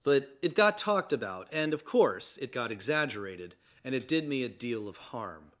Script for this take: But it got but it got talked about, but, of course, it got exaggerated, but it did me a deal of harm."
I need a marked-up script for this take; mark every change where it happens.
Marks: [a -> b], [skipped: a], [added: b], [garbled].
But it got [skipped: but it got] talked about, [but, -> and] of course, it got exaggerated, [but -> and] it did me a deal of harm."